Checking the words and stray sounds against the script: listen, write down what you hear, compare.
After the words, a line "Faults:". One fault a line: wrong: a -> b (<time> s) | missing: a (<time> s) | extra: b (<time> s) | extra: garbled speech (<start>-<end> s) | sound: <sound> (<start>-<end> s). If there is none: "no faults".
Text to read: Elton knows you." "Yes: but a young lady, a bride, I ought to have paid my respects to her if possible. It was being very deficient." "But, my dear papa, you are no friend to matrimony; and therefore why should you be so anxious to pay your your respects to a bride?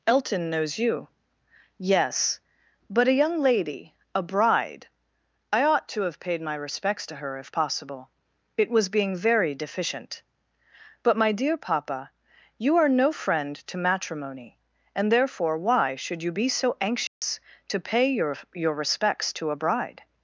Elton knows you." "Yes: but a young lady, a bride, I ought to have paid my respects to her if possible. It was being very deficient." "But, my dear papa, you are no friend to matrimony; and therefore why should you be so anxious to pay your your respects to a bride?
Faults:
sound: dropout (17.1-17.2 s)